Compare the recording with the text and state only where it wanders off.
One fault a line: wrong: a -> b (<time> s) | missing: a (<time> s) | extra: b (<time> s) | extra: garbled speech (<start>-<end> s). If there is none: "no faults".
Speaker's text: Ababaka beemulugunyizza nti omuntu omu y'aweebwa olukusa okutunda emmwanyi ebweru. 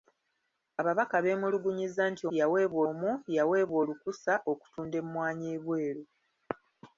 wrong: omuntu -> y'aweebwa (2.4 s)